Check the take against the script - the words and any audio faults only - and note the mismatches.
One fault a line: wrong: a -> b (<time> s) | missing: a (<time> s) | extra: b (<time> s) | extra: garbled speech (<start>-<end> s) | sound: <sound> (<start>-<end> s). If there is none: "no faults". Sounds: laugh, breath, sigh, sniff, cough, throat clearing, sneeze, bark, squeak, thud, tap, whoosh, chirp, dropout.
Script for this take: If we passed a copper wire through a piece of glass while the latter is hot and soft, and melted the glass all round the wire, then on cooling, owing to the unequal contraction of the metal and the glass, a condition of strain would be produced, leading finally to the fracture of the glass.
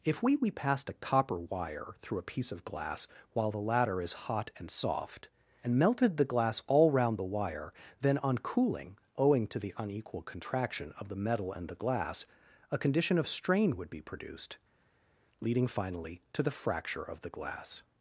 extra: we (0.3 s)